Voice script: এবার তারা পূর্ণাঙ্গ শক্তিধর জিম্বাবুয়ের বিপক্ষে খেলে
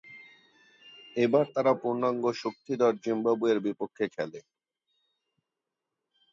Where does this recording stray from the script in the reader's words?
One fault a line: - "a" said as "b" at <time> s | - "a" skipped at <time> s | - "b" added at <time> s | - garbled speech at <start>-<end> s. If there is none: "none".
none